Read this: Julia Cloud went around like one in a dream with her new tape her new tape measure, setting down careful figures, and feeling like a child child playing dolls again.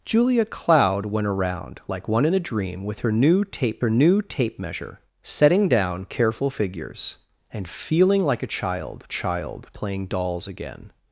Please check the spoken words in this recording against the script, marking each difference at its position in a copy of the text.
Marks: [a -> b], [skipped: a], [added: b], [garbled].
Julia Cloud went around like one in a dream with her new tape her new tape measure, setting down careful figures, and feeling like a child child playing dolls again.